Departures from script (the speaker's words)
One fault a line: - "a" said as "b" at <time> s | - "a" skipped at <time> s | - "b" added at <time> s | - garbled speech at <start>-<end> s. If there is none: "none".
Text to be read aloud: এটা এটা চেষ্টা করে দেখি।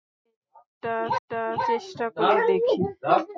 none